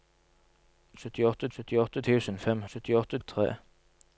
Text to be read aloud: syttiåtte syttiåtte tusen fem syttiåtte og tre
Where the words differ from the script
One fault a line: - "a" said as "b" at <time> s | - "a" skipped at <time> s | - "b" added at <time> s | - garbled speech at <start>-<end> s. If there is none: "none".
none